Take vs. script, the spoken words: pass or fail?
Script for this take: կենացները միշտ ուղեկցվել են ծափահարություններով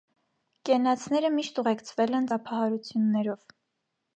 pass